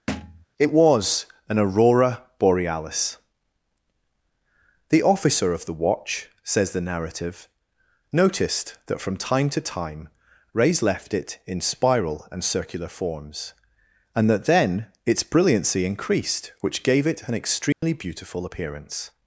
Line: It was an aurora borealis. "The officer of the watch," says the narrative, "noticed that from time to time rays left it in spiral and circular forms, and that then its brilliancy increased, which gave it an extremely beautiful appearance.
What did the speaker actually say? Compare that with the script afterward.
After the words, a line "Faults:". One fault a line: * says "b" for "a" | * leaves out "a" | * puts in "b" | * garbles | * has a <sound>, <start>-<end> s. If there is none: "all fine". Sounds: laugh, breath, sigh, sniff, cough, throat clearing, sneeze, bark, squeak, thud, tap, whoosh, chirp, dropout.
It was an aurora borealis. "The officer of the watch," says the narrative, "noticed that from time to time rays left it in spiral and circular forms, and that then its brilliancy increased, which gave it an extremely beautiful appearance.
Faults:
* has a thud, 0.1-0.5 s
* has a dropout, 17.7-17.8 s